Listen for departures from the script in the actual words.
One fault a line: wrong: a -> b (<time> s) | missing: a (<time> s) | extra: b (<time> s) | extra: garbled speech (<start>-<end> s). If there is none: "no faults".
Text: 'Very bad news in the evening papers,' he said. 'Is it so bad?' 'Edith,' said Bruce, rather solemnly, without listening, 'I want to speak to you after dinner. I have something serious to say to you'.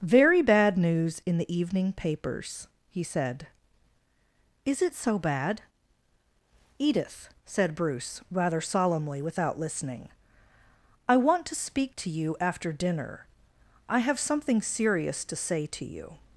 no faults